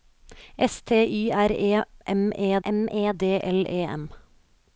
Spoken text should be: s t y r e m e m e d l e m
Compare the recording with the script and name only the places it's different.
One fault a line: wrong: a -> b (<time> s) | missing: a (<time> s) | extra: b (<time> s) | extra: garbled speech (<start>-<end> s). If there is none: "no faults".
no faults